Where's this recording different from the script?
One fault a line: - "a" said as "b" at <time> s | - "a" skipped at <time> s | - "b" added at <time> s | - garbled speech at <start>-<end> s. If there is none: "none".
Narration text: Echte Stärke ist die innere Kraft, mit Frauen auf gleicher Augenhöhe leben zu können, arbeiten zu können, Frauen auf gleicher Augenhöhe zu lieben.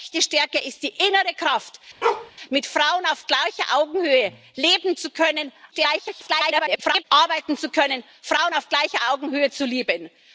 - garbled speech at 5.7-7.0 s